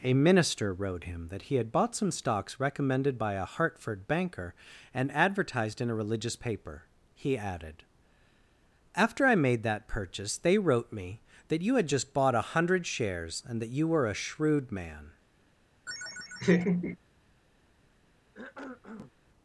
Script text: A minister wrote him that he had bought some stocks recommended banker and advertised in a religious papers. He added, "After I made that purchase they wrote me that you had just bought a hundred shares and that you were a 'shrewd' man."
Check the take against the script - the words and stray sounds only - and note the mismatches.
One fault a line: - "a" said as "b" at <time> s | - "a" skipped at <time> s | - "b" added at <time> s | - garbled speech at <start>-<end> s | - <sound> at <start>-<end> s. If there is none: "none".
- "by a Hartford" added at 3.2 s
- "papers" said as "paper" at 6.3 s
- laugh at 15.9-17.0 s
- cough at 18.3-19.1 s